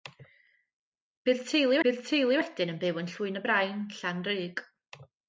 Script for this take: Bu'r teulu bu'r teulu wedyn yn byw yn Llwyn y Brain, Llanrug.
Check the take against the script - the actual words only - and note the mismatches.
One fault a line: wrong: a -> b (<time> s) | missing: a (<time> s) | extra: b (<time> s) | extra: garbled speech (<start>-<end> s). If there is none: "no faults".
no faults